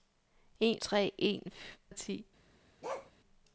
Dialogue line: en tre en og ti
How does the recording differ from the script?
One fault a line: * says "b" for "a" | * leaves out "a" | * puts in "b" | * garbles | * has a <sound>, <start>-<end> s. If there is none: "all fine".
* has a bark, 2.8-3.1 s